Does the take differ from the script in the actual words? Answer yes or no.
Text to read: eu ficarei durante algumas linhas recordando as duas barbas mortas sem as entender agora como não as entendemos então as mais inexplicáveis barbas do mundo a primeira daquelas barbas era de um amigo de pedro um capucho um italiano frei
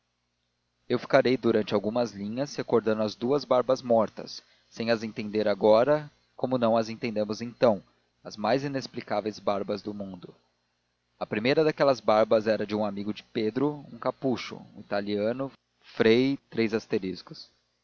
no